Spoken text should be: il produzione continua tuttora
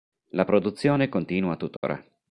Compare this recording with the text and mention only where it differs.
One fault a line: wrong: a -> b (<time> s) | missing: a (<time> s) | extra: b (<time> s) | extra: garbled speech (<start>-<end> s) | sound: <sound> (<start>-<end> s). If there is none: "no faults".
wrong: il -> la (0.3 s)
sound: dropout (1.8-1.8 s)